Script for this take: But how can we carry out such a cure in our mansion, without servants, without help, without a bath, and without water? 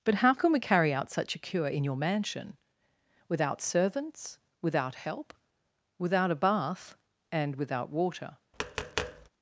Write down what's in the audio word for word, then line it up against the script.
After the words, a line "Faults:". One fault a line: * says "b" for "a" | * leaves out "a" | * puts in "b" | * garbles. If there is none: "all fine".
But how can we carry out such a cure in your mansion, without servants, without help, without a bath, and without water?
Faults:
* says "your" for "our"